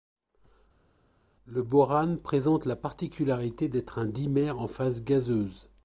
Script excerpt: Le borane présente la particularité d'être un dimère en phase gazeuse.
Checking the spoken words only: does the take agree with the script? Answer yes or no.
yes